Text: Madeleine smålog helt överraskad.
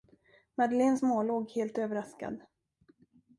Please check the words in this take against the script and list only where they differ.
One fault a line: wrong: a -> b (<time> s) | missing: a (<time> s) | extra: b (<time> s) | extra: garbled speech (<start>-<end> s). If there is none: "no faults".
no faults